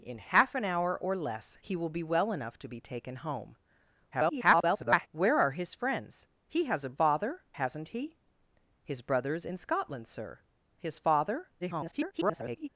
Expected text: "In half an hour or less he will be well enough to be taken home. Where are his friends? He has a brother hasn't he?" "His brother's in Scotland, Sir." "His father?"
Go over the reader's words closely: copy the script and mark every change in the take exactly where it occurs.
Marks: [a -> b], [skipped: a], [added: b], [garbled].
"In half an hour or less he will be well enough to be taken home. [garbled] Where are his friends? He has a [brother -> father] hasn't he?" "His brother's in Scotland, Sir." "His father?" [garbled]